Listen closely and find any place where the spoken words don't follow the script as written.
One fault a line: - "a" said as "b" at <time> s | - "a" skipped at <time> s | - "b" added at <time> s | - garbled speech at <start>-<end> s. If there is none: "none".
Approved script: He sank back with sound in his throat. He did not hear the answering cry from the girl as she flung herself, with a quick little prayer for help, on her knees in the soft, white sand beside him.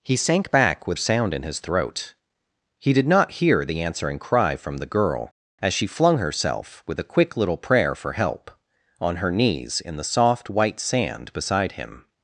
none